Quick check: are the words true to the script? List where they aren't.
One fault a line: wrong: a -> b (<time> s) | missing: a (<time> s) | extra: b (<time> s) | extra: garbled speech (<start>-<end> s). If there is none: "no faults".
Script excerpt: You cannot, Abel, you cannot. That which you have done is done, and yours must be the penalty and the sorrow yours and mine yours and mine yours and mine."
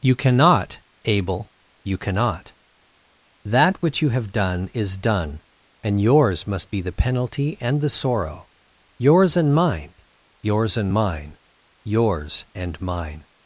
no faults